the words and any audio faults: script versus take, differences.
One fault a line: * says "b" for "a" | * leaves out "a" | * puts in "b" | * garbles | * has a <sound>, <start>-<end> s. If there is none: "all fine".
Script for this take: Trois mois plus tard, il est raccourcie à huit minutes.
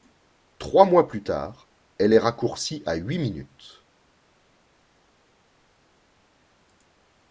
* says "elle" for "il"